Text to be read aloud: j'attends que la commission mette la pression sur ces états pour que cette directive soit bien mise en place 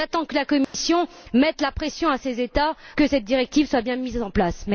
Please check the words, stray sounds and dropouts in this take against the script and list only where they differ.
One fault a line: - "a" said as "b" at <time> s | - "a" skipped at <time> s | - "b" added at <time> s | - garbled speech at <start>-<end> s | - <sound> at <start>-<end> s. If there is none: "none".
- dropout at 0.6-0.7 s
- "pour" skipped at 2.8 s